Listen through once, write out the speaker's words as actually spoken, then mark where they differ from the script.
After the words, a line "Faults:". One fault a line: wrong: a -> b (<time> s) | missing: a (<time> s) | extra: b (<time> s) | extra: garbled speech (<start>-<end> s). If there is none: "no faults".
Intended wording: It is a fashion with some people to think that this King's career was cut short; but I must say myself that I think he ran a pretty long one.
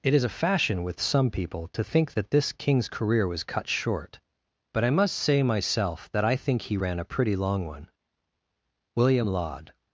It is a fashion with some people to think that this King's career was cut short; but I must say myself that I think he ran a pretty long one. William Laud
Faults:
extra: William Laud (8.9 s)